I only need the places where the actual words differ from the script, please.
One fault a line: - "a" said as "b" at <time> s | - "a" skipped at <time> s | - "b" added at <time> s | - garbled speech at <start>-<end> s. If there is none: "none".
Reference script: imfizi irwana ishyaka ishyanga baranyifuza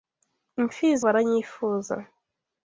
- "irwana ishyaka ishyanga" skipped at 1.0 s